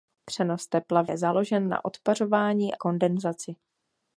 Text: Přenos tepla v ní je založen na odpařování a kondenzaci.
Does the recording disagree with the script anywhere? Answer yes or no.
yes